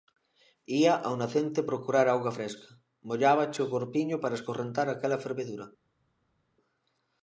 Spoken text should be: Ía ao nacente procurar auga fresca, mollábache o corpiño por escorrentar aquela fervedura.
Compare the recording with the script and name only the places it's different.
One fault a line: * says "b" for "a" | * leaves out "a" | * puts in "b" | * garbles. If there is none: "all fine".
* says "para" for "por"